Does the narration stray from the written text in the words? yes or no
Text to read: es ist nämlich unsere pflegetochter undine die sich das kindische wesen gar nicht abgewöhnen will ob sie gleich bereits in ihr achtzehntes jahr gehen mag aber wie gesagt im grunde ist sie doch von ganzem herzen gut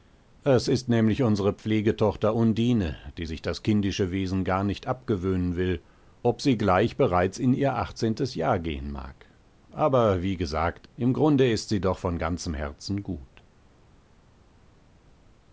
no